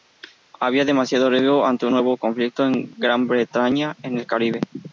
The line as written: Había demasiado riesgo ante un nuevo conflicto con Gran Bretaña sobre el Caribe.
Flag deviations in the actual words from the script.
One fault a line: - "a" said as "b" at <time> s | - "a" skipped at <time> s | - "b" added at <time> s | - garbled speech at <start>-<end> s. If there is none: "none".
- "sobre" said as "en" at 4.0 s